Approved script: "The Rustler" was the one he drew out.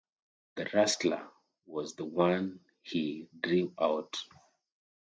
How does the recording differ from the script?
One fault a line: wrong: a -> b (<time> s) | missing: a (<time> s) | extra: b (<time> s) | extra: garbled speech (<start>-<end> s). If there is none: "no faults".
no faults